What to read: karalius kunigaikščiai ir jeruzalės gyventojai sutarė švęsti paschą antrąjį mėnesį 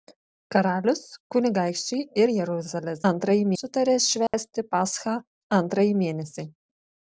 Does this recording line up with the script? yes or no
no